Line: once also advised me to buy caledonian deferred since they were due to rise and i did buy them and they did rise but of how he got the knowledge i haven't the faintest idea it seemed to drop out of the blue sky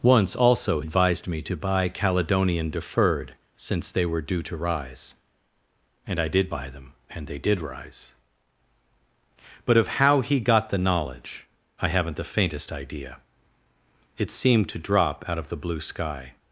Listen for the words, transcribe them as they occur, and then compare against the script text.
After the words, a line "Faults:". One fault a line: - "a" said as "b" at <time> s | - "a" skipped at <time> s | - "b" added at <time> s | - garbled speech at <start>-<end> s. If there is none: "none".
once also advised me to buy caledonian deferred since they were due to rise and i did buy them and they did rise but of how he got the knowledge i haven't the faintest idea it seemed to drop out of the blue sky
Faults:
none